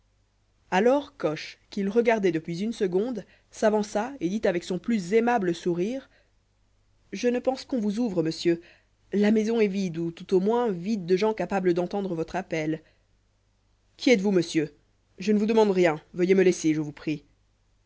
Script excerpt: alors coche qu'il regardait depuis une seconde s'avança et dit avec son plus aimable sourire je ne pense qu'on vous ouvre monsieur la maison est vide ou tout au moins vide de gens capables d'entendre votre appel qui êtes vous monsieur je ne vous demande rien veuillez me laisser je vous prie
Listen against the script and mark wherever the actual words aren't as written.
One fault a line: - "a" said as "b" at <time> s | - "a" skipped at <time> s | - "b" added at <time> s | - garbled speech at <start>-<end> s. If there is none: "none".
none